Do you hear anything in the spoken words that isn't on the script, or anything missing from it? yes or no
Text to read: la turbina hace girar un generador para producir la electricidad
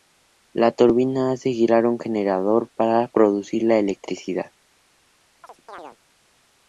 no